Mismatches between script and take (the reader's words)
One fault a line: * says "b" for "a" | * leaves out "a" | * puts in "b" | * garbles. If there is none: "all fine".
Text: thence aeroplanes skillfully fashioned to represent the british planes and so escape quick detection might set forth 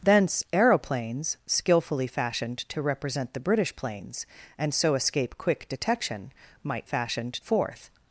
* says "fashioned" for "set"